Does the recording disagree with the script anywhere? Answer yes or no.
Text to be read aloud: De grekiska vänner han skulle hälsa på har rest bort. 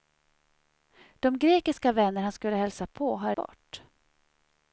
yes